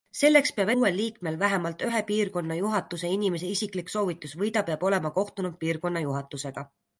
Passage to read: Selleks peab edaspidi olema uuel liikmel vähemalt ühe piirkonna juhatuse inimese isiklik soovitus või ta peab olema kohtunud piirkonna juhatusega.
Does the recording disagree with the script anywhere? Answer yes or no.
yes